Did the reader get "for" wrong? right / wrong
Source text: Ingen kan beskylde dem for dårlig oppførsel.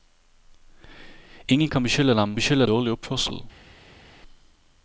wrong